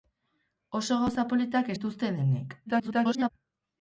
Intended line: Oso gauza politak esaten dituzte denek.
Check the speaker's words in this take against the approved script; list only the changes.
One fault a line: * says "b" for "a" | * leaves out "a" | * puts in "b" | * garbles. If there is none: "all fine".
* leaves out "esaten"
* garbles